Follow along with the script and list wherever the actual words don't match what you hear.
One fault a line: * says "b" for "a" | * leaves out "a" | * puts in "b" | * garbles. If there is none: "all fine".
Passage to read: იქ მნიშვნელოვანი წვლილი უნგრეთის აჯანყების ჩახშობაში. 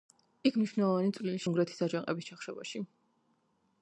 all fine